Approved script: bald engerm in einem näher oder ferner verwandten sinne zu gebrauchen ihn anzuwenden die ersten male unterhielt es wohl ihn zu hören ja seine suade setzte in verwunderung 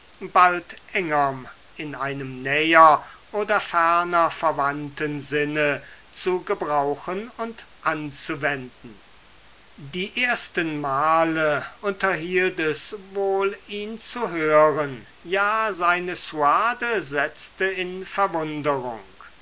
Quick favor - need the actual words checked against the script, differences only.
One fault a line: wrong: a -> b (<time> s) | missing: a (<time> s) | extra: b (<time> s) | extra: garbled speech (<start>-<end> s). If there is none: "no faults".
wrong: ihn -> und (7.4 s)